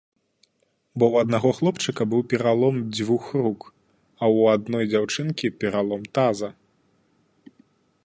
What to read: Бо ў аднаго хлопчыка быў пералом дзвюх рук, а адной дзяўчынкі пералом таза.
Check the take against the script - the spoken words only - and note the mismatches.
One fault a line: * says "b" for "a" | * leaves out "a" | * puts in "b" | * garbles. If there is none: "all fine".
* puts in "ў"